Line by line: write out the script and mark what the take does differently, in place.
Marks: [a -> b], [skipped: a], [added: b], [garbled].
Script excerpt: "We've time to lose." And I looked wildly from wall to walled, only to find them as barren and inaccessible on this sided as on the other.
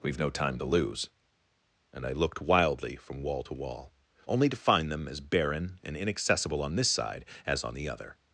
"We've [added: no] time to lose." And I looked wildly from wall to [walled, -> wall] only to find them as barren and inaccessible on this [sided -> side] as on the other.